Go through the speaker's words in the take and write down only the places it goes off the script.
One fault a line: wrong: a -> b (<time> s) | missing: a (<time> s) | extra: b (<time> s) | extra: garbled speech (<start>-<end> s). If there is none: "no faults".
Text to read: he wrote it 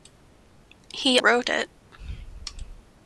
no faults